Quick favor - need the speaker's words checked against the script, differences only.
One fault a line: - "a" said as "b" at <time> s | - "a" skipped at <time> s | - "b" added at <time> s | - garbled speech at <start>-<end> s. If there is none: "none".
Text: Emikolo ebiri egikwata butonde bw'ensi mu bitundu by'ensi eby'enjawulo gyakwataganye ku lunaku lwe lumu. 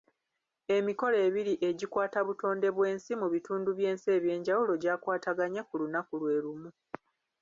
none